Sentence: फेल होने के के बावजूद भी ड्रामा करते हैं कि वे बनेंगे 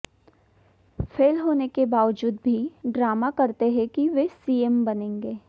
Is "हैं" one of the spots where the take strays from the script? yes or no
no